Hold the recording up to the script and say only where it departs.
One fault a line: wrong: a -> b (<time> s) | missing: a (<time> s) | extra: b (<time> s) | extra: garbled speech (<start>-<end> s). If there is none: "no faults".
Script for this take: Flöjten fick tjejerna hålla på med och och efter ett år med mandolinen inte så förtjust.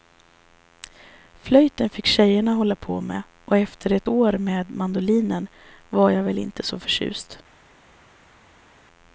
missing: och (3.6 s)
extra: var jag väl (5.9 s)